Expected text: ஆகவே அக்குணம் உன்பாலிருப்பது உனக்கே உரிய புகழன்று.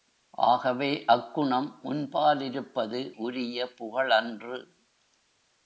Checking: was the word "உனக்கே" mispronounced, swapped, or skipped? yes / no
yes